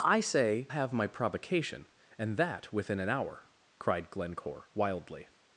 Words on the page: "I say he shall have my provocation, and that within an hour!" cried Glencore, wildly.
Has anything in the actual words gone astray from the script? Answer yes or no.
yes